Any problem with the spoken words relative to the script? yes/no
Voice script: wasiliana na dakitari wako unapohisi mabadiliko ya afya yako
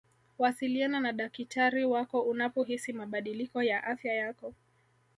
no